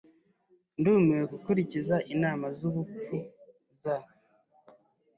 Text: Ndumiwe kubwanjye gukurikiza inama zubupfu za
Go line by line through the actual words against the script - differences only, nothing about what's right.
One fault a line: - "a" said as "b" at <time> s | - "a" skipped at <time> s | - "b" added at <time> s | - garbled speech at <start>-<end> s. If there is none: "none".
- "kubwanjye" skipped at 1.2 s